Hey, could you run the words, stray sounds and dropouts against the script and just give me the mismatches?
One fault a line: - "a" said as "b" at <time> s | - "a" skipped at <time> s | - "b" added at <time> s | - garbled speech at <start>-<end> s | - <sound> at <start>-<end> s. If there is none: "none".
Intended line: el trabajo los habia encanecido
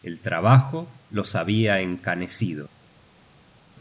none